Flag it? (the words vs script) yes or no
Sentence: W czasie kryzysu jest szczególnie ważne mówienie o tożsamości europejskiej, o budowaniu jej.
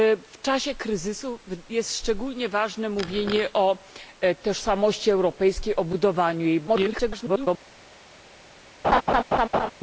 yes